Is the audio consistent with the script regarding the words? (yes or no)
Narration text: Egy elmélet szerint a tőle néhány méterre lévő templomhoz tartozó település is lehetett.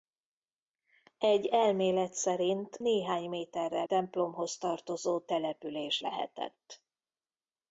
no